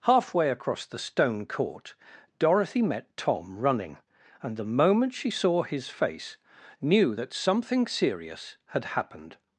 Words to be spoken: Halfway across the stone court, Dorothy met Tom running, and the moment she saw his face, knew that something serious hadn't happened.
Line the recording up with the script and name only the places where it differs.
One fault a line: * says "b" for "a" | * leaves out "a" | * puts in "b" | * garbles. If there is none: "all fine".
* says "had" for "hadn't"